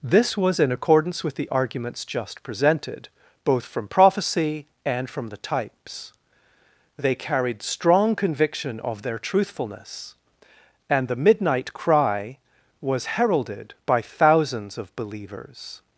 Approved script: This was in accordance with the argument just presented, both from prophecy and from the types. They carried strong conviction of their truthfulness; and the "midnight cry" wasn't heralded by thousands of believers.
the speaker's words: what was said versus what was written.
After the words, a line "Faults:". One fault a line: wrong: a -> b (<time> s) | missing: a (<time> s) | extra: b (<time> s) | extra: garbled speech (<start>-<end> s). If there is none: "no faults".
This was in accordance with the arguments just presented, both from prophecy and from the types. They carried strong conviction of their truthfulness; and the "midnight cry" was heralded by thousands of believers.
Faults:
wrong: argument -> arguments (1.5 s)
wrong: wasn't -> was (12.8 s)